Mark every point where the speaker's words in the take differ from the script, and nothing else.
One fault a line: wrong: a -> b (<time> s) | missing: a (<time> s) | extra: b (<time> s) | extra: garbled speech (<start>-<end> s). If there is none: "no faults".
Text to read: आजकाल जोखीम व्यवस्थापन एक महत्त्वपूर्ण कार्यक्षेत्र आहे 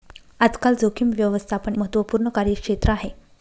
missing: एक (1.8 s)